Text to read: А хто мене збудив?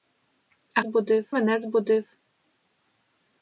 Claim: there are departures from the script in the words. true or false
true